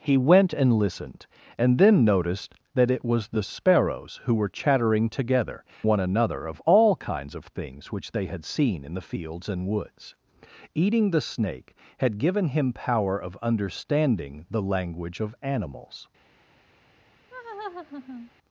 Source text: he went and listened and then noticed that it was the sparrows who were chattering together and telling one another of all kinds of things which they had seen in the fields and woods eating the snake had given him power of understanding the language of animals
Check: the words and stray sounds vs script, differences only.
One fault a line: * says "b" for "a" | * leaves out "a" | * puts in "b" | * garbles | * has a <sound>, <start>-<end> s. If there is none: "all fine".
* leaves out "and telling"
* has a laugh, 17.3-18.3 s